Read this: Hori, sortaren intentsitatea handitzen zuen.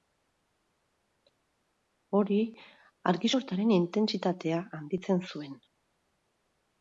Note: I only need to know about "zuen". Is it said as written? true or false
true